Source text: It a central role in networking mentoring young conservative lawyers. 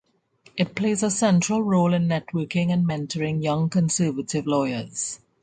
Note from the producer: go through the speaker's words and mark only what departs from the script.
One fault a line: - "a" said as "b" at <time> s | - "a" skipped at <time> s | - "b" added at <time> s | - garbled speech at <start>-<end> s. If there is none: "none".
- "plays" added at 0.7 s
- "and" added at 2.7 s